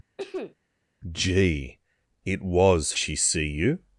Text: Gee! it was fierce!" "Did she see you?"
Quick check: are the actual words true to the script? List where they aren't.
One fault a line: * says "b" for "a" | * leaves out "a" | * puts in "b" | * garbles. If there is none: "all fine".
* leaves out "fierce Did"